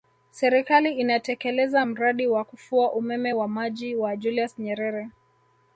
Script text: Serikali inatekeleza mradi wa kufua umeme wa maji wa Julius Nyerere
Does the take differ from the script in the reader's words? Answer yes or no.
no